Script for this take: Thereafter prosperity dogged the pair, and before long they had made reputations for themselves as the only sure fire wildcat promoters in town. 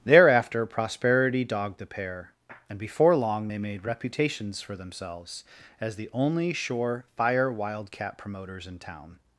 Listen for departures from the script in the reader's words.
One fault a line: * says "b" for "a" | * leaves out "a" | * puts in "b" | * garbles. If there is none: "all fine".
* leaves out "had"